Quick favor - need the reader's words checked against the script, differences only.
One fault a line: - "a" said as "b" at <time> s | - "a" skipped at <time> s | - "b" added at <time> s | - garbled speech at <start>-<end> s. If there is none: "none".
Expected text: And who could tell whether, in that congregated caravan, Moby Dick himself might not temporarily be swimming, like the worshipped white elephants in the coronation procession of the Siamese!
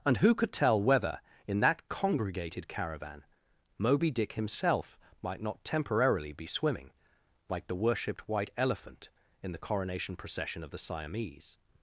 - "elephants" said as "elephant" at 8.6 s